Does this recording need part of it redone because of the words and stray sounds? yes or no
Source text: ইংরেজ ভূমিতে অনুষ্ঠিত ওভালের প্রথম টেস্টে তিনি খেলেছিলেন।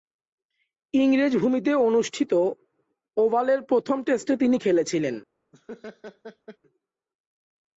yes